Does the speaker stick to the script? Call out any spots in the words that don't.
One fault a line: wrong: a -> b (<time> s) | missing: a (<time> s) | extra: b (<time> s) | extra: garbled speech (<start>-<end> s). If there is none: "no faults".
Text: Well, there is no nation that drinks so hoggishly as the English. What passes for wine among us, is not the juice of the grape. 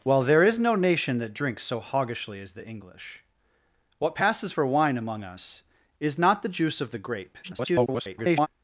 extra: garbled speech (7.4-8.5 s)